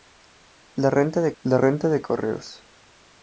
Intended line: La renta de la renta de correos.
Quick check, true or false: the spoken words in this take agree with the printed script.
true